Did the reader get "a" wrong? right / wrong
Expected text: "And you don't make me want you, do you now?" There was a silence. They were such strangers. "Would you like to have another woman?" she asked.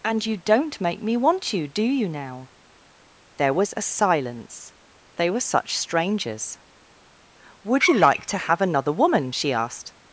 right